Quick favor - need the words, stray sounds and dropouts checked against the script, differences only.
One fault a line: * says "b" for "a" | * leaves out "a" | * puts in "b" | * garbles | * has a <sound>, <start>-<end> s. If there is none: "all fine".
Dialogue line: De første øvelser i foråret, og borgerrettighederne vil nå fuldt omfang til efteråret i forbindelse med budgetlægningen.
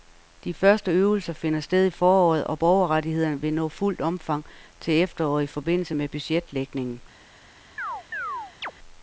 * puts in "finder sted"
* has a chirp, 7.8-8.7 s